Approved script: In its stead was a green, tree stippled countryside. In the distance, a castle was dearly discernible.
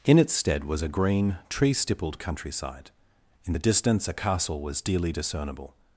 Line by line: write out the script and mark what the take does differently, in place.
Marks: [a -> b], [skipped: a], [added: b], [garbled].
In its stead was a green, tree stippled countryside. In the distance, a castle was dearly discernible.